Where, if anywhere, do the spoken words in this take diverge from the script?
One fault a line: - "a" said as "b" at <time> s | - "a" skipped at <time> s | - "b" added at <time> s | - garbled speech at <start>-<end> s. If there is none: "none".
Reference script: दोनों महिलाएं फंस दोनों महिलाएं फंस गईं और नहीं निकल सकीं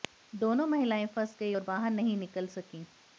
- "दोनों महिलाएं फंस" skipped at 1.4 s
- "बाहर" added at 1.6 s